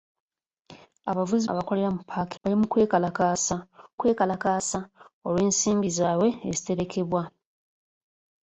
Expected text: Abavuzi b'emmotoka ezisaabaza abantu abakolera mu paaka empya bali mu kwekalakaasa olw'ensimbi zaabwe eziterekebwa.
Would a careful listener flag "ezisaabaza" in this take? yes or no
yes